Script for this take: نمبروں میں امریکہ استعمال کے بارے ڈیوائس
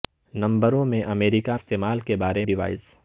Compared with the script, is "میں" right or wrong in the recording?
right